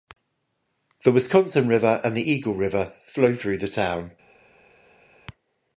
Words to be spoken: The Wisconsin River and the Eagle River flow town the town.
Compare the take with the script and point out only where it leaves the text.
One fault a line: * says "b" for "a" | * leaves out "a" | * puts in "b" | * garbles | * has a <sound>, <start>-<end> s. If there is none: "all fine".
* says "through" for "town"